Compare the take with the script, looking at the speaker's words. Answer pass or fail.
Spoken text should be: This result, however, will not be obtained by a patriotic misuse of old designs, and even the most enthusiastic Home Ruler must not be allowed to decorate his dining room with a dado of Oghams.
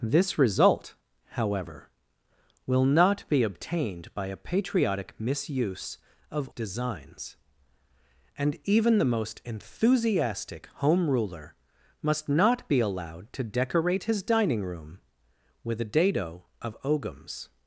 fail